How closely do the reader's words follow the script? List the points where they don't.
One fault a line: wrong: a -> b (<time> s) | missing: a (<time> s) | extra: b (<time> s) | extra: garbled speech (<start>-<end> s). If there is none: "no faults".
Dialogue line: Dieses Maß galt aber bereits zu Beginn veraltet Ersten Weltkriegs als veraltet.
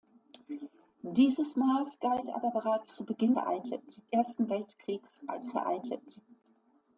no faults